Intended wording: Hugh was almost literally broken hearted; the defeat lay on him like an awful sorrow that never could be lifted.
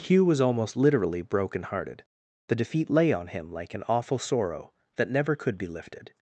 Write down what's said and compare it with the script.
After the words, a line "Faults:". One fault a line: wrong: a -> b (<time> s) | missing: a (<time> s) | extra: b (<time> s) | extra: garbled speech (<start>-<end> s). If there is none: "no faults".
Hugh was almost literally broken hearted; the defeat lay on him like an awful sorrow that never could be lifted.
Faults:
no faults